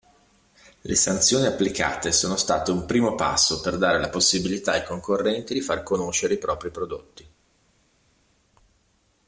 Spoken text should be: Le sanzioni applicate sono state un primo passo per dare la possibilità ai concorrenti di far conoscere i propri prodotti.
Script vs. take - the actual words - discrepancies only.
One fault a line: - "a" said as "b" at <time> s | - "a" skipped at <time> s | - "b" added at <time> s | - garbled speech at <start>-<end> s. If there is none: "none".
none